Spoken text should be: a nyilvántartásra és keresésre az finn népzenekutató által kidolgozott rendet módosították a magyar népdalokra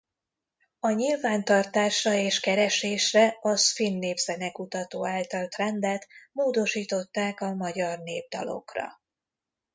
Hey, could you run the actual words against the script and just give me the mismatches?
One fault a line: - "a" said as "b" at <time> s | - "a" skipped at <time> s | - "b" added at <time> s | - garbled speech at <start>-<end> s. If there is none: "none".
- "kidolgozott" skipped at 5.5 s